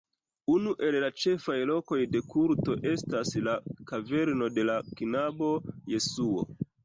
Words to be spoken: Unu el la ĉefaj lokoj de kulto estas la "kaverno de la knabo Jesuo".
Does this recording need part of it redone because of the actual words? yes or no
no